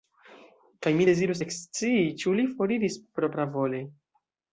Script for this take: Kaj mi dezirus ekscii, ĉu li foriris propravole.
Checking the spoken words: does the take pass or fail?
pass